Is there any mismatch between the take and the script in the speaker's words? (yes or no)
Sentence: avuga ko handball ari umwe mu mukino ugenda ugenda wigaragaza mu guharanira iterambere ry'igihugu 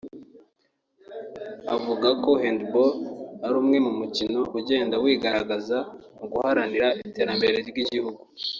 yes